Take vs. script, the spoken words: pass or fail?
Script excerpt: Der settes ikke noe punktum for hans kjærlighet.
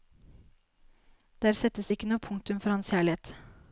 pass